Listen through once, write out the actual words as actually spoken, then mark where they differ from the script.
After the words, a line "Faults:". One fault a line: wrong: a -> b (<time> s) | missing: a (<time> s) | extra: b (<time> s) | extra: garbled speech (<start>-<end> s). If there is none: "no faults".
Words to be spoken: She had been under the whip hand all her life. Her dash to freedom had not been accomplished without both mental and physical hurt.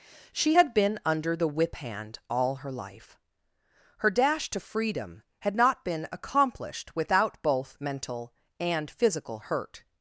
She had been under the whip hand all her life. Her dash to freedom had not been accomplished without both mental and physical hurt.
Faults:
no faults